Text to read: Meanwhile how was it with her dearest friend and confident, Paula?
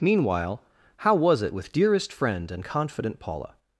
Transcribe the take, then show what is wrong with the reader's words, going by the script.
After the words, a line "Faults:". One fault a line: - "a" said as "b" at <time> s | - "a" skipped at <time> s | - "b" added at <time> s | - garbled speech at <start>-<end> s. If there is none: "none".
Meanwhile how was it with dearest friend and confident, Paula?
Faults:
- "her" skipped at 1.7 s